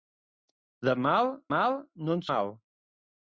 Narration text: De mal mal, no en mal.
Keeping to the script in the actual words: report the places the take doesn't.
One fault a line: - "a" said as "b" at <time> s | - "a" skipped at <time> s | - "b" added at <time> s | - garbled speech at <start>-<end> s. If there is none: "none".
none